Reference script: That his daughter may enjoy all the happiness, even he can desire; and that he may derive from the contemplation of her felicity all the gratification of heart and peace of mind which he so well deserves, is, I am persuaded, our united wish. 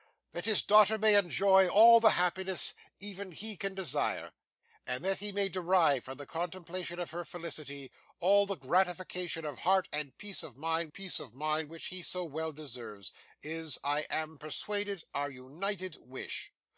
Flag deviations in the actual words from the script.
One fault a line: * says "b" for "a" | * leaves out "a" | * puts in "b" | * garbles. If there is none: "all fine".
* puts in "peace of mind"